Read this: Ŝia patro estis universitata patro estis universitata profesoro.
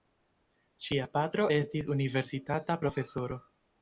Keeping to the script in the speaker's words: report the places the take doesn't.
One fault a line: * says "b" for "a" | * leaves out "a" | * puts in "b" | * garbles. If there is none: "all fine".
* leaves out "patro estis universitata"